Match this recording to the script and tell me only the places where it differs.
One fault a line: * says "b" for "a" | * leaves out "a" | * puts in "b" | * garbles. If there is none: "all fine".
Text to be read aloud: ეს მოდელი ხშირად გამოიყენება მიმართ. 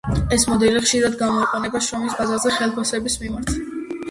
* puts in "შრომის ბაზარზე ხელფასების"